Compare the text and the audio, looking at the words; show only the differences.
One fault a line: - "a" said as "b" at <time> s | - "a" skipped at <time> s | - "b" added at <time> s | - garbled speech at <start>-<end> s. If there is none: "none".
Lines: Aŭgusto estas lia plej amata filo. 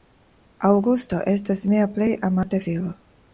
- "lia" said as "mia" at 1.8 s